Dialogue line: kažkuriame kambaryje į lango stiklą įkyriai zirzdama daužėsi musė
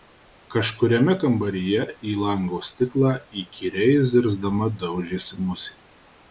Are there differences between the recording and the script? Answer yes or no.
no